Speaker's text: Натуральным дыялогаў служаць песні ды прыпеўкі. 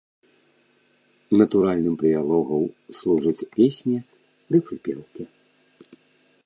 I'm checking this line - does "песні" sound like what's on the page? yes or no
yes